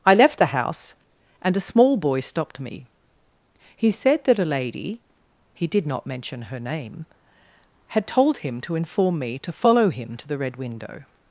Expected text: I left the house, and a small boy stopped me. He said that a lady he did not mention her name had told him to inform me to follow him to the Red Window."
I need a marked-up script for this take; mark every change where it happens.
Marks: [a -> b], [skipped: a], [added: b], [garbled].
I left the house, and a small boy stopped me. He said that a lady he did not mention her name had told him to inform me to follow him to the Red Window."